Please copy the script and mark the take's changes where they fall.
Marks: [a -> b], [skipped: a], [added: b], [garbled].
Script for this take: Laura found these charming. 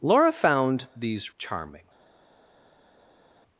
Laura found these charming.